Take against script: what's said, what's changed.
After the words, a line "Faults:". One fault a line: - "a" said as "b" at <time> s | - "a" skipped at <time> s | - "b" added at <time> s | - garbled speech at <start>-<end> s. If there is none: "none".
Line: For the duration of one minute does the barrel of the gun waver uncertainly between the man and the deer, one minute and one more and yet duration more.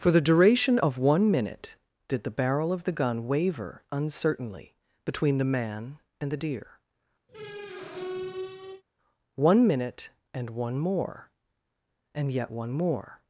For the duration of one minute did the barrel of the gun waver uncertainly between the man and the deer, one minute and one more and yet one more.
Faults:
- "does" said as "did" at 2.1 s
- "duration" said as "one" at 12.5 s